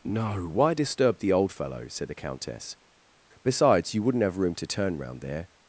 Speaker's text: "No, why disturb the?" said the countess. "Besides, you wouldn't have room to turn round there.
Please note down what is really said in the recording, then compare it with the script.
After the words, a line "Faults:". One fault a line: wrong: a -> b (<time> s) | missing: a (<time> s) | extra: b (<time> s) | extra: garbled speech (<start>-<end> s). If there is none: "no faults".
"No, why disturb the old fellow?" said the countess. "Besides, you wouldn't have room to turn round there.
Faults:
extra: old fellow (1.3 s)